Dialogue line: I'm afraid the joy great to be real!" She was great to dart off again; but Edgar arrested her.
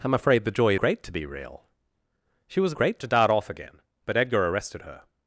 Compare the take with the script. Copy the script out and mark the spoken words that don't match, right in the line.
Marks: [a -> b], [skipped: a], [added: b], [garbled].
I'm afraid the joy great to be real!" She was great to dart off again; but Edgar arrested her.